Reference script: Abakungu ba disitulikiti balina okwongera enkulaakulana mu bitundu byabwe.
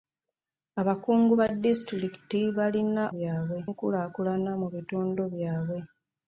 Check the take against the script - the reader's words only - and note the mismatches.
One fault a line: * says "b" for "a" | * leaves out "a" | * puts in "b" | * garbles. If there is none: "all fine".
* says "byabwe" for "okwongera"